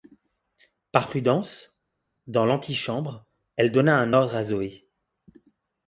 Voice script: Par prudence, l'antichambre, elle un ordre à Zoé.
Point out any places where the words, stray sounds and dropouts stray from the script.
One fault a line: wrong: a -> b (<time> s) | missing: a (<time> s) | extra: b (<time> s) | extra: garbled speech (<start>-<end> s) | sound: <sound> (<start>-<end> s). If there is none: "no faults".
extra: dans (2.3 s)
extra: donna (3.7 s)